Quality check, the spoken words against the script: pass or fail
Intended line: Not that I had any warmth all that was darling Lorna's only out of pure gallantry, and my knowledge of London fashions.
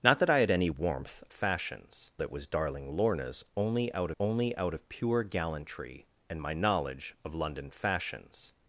fail